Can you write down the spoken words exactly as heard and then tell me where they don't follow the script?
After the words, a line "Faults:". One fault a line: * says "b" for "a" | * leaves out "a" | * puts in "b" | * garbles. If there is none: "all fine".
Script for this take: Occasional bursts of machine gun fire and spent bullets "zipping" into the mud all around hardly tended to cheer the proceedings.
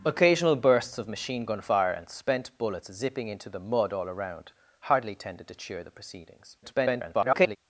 Occasional bursts of machine gun fire and spent bullets "zipping" into the mud all around hardly tended to cheer the proceedings. [garbled]
Faults:
* garbles